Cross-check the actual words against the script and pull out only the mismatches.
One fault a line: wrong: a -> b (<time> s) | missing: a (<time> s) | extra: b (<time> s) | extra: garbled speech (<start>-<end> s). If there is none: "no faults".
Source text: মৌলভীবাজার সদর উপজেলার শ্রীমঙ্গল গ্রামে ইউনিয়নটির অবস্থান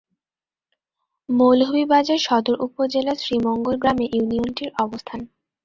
no faults